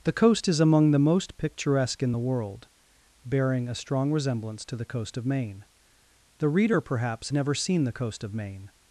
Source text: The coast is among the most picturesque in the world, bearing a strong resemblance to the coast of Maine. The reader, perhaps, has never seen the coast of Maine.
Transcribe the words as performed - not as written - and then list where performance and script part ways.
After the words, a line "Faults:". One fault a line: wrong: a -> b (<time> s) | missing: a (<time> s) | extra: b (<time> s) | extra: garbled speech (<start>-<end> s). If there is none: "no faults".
The coast is among the most picturesque in the world, bearing a strong resemblance to the coast of Maine. The reader, perhaps, never seen the coast of Maine.
Faults:
missing: has (7.3 s)